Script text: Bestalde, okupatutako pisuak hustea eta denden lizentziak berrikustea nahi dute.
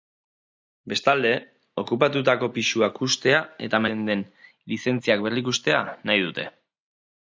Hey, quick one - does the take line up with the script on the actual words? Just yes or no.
yes